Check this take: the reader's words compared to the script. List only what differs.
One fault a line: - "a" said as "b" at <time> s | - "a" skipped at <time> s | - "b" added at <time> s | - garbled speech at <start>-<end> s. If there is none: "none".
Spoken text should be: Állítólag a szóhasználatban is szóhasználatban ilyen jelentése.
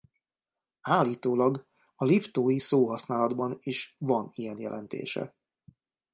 - "liptói" added at 2.0 s
- "szóhasználatban" said as "van" at 4.0 s